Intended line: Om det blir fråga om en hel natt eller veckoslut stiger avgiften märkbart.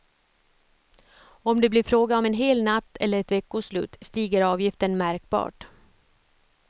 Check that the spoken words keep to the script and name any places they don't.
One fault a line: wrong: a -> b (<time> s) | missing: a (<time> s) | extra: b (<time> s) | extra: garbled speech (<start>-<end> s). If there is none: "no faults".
extra: ett (3.2 s)